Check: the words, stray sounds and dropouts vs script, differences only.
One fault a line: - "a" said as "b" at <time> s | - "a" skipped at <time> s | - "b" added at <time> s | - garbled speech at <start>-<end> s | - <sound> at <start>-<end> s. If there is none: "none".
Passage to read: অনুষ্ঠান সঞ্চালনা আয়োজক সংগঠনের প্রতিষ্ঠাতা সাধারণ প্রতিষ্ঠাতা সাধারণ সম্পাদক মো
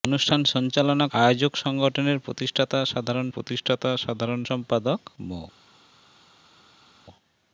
none